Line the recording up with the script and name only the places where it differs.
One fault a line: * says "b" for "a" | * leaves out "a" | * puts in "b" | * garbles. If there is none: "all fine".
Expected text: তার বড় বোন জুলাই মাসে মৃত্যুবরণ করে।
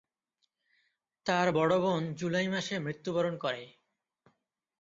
all fine